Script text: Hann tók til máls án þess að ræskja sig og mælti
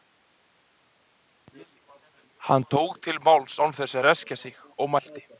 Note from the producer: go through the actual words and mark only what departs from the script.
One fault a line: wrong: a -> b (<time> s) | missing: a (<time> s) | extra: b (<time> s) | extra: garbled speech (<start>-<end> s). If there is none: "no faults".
no faults